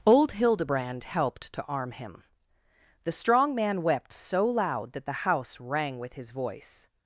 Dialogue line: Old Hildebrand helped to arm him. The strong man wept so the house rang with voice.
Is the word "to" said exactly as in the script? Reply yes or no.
yes